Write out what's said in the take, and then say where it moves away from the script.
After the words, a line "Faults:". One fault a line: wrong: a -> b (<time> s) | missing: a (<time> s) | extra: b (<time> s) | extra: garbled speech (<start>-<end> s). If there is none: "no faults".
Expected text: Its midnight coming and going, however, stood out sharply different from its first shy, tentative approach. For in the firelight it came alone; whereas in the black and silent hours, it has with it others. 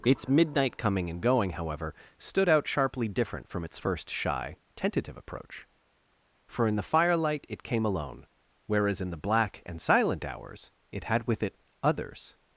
Its midnight coming and going, however, stood out sharply different from its first shy, tentative approach. For in the firelight it came alone; whereas in the black and silent hours, it had with it others.
Faults:
wrong: has -> had (11.0 s)